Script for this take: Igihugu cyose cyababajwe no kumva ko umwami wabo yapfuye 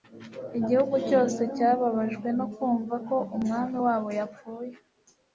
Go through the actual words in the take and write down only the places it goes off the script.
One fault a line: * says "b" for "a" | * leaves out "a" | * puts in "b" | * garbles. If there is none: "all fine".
all fine